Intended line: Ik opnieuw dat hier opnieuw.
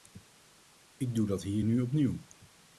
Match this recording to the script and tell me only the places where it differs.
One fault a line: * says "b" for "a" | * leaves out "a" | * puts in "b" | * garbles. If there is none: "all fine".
* says "doe" for "opnieuw"
* puts in "nu"